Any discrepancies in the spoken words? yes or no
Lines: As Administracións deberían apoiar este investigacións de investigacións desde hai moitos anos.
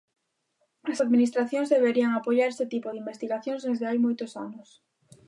yes